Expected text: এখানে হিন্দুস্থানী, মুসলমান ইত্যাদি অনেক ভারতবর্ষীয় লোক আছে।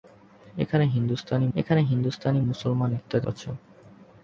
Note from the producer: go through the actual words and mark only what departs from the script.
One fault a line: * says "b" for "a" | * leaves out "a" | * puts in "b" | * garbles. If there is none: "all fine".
* puts in "এখানে হিন্দুস্থানী"
* leaves out "অনেক ভারতবর্ষীয় লোক"